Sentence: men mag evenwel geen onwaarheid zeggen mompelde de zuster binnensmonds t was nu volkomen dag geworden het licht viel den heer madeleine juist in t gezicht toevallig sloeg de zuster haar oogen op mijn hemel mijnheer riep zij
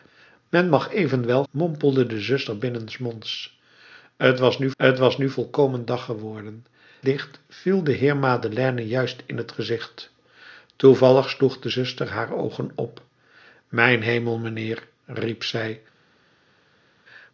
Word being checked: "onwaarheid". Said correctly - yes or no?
no